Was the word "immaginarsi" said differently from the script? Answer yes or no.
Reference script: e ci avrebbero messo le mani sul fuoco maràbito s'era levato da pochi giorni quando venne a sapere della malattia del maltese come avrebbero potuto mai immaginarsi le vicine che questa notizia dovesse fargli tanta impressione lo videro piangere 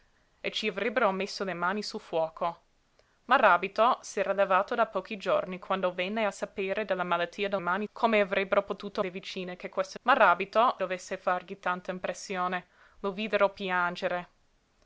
yes